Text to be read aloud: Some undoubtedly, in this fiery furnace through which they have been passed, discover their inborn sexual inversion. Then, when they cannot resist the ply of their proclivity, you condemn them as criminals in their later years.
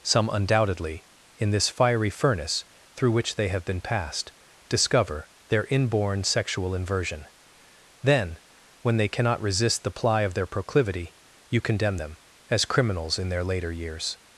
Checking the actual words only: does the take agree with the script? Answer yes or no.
yes